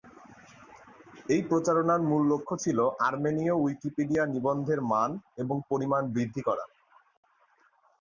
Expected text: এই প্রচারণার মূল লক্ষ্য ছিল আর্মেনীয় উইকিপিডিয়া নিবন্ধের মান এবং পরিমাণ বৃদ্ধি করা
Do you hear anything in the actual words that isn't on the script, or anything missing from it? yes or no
no